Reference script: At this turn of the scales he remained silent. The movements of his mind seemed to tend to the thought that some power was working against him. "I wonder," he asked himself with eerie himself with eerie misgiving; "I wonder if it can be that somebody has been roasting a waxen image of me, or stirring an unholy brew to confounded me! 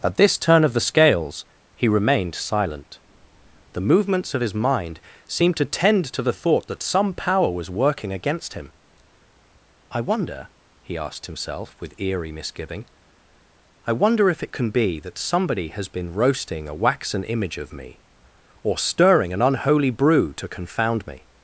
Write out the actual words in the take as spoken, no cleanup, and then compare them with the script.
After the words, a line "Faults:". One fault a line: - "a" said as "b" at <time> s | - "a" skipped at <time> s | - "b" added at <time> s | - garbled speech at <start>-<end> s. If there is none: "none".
At this turn of the scales he remained silent. The movements of his mind seemed to tend to the thought that some power was working against him. "I wonder," he asked himself with eerie misgiving; "I wonder if it can be that somebody has been roasting a waxen image of me, or stirring an unholy brew to confound me!
Faults:
- "himself with eerie" skipped at 12.3 s
- "confounded" said as "confound" at 20.5 s